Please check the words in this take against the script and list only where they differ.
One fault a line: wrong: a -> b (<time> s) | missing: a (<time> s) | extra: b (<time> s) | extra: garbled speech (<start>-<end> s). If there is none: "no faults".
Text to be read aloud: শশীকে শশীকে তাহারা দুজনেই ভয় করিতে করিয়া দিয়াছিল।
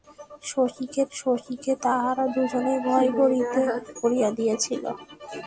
no faults